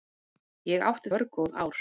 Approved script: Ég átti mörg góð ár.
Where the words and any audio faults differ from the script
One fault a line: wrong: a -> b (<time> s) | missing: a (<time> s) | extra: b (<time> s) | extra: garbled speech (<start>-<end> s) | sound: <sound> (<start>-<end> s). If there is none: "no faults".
no faults